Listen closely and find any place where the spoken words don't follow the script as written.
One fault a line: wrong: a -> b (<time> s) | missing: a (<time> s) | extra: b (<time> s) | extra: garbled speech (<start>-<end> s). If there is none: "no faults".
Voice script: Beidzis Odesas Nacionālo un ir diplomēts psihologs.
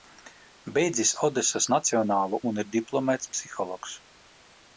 no faults